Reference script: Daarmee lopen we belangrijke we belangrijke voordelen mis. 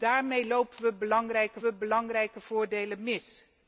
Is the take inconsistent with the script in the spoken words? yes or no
no